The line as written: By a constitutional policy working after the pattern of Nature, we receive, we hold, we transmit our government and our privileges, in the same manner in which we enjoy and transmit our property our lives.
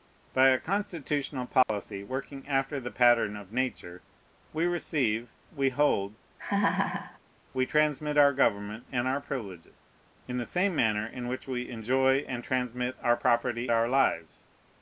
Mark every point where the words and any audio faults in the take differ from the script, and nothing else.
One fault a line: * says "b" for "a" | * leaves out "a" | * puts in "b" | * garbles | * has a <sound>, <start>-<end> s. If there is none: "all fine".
* has a dropout, 1.6-1.7 s
* has a laugh, 6.4-7.2 s